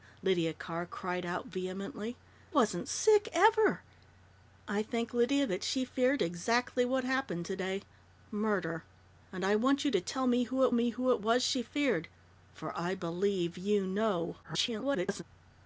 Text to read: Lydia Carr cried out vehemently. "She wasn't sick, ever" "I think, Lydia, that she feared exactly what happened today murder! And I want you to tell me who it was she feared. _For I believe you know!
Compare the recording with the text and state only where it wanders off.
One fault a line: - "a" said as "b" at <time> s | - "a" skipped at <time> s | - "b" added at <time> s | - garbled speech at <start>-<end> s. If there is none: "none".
- "She" skipped at 2.2 s
- "me who it" added at 10.7 s
- garbled speech at 14.4-15.2 s